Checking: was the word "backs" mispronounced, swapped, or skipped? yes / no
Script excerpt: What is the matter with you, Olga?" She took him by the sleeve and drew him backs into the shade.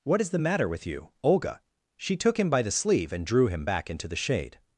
yes